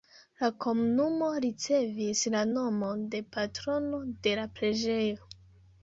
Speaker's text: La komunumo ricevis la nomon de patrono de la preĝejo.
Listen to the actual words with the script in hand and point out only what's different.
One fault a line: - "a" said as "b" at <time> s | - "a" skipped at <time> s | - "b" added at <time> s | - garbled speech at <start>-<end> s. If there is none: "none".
none